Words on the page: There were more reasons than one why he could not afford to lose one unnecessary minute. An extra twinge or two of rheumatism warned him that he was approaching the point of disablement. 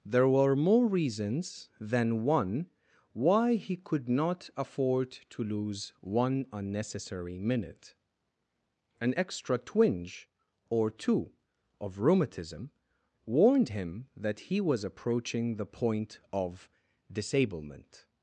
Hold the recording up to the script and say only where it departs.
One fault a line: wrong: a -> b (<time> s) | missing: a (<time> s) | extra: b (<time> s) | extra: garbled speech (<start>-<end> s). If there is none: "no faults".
no faults